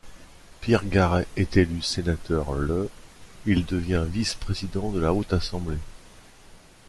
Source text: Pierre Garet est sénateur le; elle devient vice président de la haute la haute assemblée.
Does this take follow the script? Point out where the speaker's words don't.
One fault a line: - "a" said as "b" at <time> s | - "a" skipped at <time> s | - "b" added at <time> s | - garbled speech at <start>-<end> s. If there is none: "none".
- "élu" added at 1.6 s
- "elle" said as "il" at 3.4 s
- "la haute" skipped at 5.3 s